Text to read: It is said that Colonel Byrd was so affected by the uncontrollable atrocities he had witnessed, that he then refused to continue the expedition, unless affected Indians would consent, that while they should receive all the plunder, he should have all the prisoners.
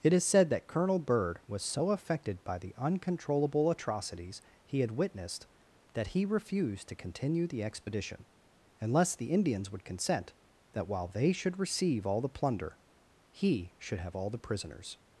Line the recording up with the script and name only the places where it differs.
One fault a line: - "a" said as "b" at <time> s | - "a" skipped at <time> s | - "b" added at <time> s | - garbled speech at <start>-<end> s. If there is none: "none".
- "then" skipped at 6.2 s
- "affected" said as "the" at 9.2 s